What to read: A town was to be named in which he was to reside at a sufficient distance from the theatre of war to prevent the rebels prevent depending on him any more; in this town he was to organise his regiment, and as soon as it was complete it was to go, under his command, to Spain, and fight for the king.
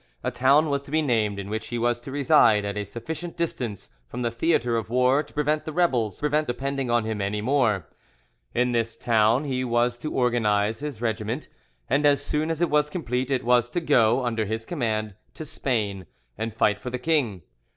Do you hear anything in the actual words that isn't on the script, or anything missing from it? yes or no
no